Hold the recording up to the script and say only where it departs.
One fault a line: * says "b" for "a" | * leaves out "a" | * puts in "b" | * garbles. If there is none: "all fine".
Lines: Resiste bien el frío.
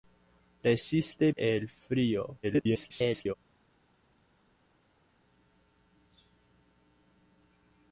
* leaves out "bien"
* garbles